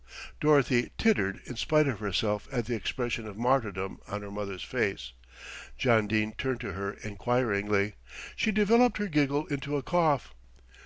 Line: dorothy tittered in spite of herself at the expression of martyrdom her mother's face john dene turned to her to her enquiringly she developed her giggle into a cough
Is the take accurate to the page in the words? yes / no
no